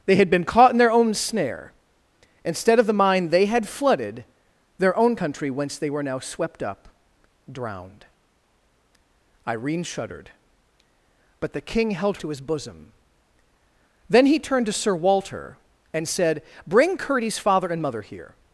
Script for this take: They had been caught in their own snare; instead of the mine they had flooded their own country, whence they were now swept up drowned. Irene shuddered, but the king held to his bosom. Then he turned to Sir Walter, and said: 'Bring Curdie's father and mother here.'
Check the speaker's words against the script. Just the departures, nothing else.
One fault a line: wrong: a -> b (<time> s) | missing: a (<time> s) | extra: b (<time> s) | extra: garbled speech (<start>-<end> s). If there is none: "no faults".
no faults